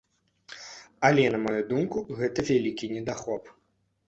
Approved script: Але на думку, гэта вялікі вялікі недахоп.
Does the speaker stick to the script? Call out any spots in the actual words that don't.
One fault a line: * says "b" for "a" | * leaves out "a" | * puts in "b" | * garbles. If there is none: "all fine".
* puts in "маю"
* leaves out "вялікі"